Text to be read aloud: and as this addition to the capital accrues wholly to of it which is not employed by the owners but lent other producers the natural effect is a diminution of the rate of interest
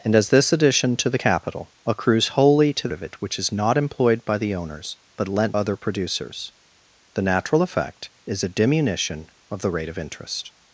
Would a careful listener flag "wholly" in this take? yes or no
no